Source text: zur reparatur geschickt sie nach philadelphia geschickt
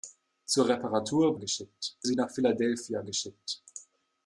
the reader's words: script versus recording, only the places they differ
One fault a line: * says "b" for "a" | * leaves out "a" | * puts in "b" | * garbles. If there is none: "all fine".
all fine